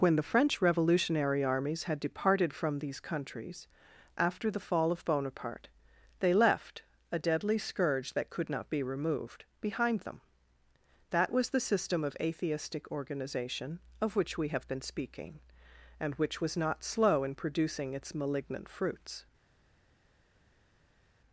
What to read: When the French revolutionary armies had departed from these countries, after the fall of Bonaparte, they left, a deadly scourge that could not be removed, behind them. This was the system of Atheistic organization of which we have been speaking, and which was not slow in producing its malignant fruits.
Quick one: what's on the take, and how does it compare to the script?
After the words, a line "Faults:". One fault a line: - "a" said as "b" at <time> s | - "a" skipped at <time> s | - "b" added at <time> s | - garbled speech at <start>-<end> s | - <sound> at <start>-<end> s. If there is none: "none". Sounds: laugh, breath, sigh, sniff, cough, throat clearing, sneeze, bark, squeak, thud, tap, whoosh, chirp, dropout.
When the French revolutionary armies had departed from these countries, after the fall of Bonaparte, they left, a deadly scourge that could not be removed, behind them. That was the system of Atheistic organization of which we have been speaking, and which was not slow in producing its malignant fruits.
Faults:
- "This" said as "That" at 11.1 s